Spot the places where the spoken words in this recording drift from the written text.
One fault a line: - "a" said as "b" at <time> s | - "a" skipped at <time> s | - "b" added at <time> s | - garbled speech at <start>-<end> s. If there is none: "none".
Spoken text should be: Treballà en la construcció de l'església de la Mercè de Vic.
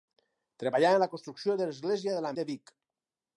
- "Mercè" skipped at 2.3 s